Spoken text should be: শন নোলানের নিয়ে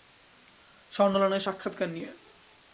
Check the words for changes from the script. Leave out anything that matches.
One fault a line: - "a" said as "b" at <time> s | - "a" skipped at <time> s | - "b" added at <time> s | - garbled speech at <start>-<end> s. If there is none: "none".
- "সাক্ষাৎকার" added at 1.4 s